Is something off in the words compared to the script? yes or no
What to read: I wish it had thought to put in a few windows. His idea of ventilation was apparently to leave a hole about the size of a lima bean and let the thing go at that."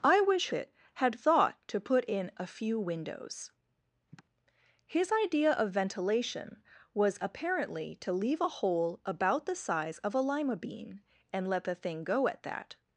no